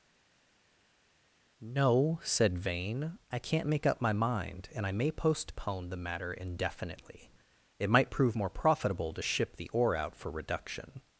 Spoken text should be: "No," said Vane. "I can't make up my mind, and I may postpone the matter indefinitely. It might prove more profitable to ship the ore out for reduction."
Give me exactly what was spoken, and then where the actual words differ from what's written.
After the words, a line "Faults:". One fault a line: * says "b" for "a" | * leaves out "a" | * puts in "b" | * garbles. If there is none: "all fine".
"No," said Vane. "I can't make up my mind, and I may postpone the matter indefinitely. It might prove more profitable to ship the ore out for reduction."
Faults:
all fine